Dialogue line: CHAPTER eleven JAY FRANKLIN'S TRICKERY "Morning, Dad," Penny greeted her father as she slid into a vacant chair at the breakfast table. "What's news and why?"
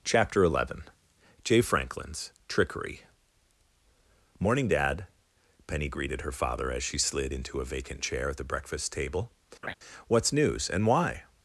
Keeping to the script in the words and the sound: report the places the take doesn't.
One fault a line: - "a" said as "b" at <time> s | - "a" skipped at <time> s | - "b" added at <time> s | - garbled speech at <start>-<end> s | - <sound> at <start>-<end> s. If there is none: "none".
- laugh at 9.6-9.7 s